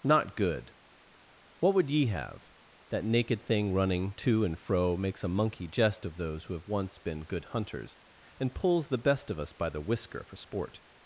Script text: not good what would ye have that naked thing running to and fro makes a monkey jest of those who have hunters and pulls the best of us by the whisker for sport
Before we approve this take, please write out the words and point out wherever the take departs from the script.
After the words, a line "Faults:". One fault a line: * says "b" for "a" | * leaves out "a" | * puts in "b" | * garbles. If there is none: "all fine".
not good what would ye have that naked thing running to and fro makes a monkey jest of those who have once been good hunters and pulls the best of us by the whisker for sport
Faults:
* puts in "once been good"